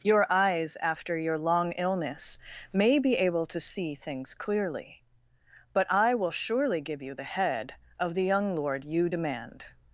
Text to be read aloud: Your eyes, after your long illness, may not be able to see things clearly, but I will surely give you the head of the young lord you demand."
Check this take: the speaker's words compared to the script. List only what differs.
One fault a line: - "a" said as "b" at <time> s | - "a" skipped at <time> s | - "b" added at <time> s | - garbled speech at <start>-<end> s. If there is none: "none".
- "not" skipped at 3.0 s